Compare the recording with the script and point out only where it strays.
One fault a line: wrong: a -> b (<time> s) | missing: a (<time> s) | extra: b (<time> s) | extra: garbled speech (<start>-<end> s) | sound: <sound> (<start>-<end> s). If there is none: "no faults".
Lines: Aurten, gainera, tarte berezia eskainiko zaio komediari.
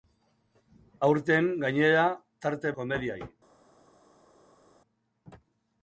missing: berezia eskainiko zaio (2.7 s)